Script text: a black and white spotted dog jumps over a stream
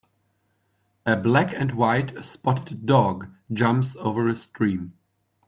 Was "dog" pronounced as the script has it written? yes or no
yes